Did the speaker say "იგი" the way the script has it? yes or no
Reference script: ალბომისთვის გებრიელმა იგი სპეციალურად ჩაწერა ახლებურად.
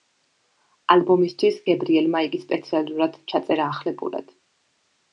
yes